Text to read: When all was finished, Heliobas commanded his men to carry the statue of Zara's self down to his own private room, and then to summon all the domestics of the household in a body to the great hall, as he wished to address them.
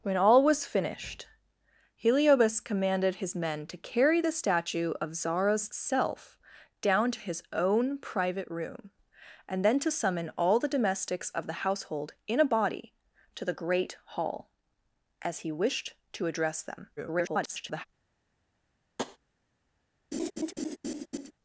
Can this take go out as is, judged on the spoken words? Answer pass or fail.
fail